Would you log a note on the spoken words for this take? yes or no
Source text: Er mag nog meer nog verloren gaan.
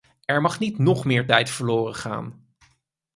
yes